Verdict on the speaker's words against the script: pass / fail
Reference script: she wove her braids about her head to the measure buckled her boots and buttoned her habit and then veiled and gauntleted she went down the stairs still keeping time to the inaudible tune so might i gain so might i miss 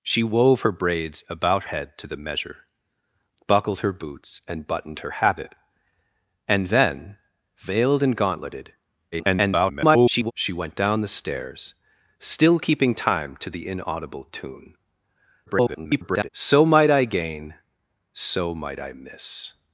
fail